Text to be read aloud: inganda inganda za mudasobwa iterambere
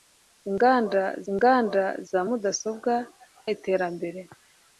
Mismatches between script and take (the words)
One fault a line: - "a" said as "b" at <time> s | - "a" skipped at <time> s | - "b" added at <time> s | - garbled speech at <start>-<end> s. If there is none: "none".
none